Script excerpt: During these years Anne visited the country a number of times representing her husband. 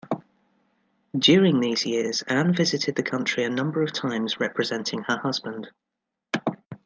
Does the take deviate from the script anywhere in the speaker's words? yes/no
no